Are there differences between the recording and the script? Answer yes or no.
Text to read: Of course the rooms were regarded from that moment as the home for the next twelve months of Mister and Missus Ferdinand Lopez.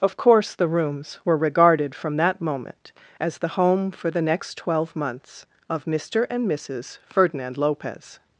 no